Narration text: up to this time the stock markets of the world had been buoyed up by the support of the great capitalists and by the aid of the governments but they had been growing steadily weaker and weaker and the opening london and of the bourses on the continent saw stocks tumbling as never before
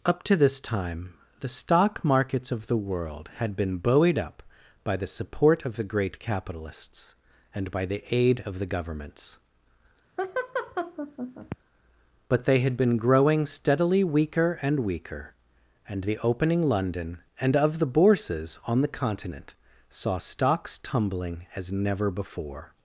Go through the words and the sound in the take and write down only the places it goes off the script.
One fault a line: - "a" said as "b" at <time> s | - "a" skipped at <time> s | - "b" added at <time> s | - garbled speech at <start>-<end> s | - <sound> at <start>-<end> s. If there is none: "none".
- laugh at 10.2-11.6 s